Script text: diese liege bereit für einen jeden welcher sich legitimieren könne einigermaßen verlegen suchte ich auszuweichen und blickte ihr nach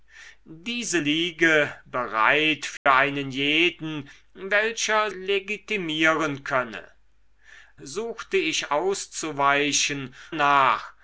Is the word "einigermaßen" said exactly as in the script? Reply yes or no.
no